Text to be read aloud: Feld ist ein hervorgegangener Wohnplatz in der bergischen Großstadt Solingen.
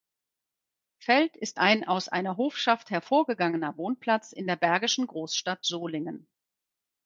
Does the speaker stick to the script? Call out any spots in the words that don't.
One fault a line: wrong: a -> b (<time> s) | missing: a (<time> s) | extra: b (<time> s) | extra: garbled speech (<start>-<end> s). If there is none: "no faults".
extra: aus einer Hofschaft (1.8 s)